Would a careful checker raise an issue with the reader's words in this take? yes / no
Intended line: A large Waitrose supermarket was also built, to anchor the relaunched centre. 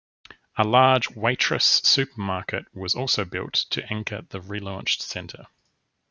no